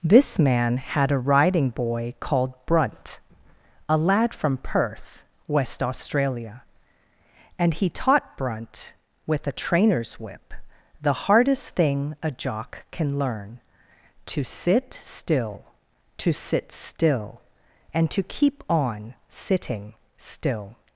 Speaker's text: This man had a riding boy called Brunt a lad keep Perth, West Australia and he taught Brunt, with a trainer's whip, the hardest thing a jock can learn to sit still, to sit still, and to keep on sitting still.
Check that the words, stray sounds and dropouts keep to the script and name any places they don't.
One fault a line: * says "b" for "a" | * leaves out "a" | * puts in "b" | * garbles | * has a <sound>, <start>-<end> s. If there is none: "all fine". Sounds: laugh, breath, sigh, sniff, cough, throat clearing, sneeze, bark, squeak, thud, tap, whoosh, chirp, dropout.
* says "from" for "keep"